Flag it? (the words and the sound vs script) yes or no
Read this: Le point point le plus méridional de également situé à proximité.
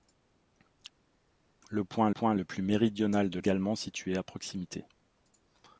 no